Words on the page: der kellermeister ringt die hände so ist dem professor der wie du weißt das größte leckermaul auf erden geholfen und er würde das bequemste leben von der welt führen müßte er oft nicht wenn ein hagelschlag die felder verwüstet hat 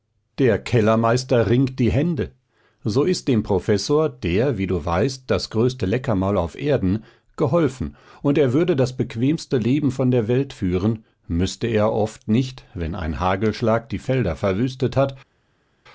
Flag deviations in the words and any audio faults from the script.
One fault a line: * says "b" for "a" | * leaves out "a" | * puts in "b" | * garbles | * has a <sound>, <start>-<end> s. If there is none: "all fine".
all fine